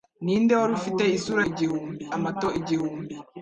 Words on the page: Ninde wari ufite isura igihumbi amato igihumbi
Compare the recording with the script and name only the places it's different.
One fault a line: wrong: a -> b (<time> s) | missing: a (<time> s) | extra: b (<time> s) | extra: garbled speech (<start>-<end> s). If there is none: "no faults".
no faults